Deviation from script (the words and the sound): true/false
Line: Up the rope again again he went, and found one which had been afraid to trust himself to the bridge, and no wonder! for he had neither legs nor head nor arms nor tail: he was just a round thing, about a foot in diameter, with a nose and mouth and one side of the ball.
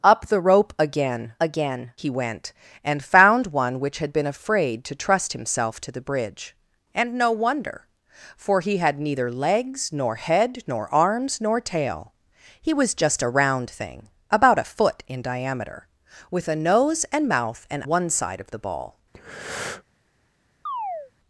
true